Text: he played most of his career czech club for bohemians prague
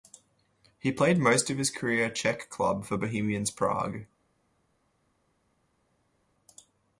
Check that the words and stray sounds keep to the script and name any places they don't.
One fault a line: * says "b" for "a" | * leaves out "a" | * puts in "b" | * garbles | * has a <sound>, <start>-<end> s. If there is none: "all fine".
all fine